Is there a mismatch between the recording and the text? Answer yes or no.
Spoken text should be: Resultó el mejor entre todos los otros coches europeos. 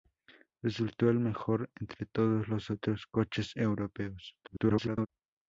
yes